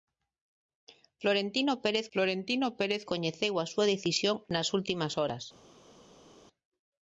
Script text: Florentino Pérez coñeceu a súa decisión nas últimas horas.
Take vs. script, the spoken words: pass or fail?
fail